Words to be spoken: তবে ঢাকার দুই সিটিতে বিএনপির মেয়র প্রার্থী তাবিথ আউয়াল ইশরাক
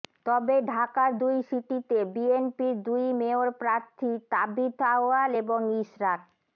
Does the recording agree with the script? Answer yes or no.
no